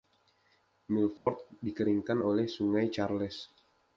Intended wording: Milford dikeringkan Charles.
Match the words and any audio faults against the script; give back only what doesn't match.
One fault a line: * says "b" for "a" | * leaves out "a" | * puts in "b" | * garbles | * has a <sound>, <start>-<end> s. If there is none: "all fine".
* has a dropout, 1.2-1.3 s
* puts in "oleh Sungai"